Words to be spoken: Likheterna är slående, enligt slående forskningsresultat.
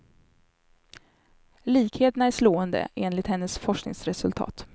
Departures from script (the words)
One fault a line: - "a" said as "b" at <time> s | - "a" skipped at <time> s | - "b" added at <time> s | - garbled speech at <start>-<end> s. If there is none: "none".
- "slående" said as "hennes" at 3.3 s